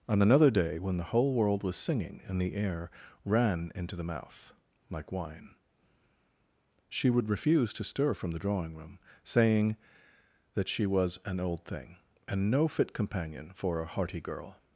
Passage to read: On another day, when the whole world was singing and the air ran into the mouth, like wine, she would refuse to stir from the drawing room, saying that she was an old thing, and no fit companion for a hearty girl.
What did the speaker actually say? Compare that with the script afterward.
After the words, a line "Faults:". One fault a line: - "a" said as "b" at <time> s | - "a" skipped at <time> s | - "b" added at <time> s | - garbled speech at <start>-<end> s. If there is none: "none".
On another day, when the whole world was singing and the air ran into the mouth, like wine, she would refuse to stir from the drawing room, saying that she was an old thing, and no fit companion for a hearty girl.
Faults:
none